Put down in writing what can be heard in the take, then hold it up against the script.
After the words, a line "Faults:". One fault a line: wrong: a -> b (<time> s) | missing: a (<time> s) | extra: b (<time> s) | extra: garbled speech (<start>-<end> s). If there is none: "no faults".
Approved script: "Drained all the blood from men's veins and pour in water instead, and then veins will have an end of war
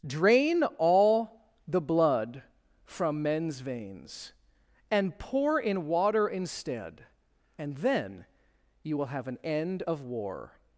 "Drain all the blood from men's veins and pour in water instead, and then you will have an end of war
Faults:
wrong: Drained -> Drain (0.1 s)
wrong: veins -> you (8.8 s)